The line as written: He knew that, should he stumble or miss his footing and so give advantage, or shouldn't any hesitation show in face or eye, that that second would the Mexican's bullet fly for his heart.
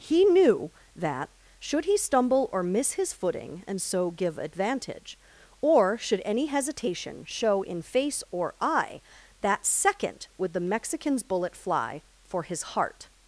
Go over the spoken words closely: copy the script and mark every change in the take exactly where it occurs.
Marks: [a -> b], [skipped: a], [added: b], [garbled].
He knew that, should he stumble or miss his footing and so give advantage, or [shouldn't -> should] any hesitation show in face or eye, that [skipped: that] second would the Mexican's bullet fly for his heart.